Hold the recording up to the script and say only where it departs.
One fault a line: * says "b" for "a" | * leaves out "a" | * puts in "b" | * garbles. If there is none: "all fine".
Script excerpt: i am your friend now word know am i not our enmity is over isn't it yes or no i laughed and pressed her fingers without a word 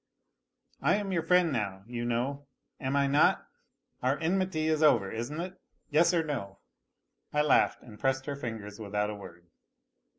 * says "you" for "word"